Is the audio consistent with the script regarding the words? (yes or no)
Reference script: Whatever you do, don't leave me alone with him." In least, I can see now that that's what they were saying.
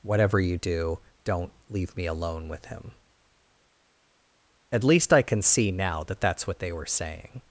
no